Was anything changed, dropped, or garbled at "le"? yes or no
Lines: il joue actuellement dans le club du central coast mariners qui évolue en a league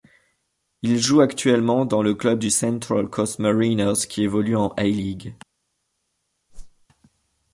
no